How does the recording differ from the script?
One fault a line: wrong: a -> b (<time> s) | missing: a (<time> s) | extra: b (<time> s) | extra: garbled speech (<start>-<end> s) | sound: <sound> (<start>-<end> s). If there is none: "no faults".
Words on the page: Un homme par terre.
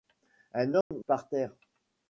sound: dropout (0.8-0.9 s)